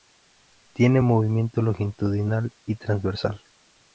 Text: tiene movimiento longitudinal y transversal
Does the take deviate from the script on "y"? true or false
false